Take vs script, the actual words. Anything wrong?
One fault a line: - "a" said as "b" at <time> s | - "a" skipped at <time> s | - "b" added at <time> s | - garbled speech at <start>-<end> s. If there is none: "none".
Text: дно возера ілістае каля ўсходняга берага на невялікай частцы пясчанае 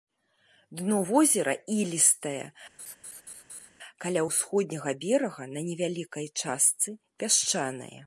none